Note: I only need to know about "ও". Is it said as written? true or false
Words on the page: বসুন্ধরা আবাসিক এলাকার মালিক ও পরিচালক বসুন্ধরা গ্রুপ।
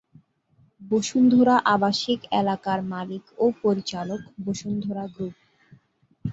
true